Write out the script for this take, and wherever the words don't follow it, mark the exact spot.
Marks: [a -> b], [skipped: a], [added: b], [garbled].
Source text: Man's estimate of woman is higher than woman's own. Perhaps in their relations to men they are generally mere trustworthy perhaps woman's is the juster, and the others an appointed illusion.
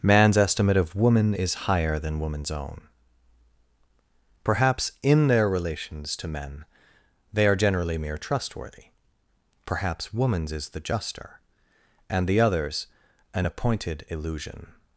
Man's estimate of woman is higher than woman's own. Perhaps in their relations to men they are generally mere trustworthy perhaps woman's is the juster, and the others an appointed illusion.